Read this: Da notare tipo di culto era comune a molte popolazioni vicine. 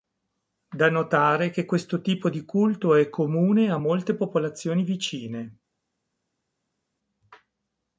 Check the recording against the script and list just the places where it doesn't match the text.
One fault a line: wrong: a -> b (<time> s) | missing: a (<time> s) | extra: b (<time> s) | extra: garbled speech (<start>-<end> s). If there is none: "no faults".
extra: che questo (1.5 s)
wrong: era -> è (3.0 s)